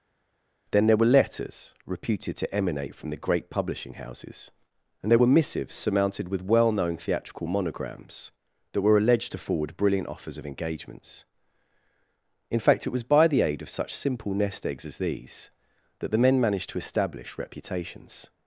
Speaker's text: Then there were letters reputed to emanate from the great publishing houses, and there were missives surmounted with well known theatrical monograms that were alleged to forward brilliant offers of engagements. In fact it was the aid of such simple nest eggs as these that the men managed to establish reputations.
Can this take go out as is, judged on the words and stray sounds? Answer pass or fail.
fail